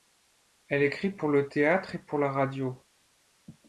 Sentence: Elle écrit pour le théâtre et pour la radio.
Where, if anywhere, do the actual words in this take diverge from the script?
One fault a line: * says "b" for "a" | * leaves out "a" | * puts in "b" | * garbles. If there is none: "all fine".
all fine